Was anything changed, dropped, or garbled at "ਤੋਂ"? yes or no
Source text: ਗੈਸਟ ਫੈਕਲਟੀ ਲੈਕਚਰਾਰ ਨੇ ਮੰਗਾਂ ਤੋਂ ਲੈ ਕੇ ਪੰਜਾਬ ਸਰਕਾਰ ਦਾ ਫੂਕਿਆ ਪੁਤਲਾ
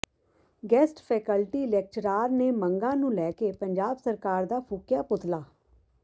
yes